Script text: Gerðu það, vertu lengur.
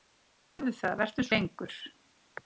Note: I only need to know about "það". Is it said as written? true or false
true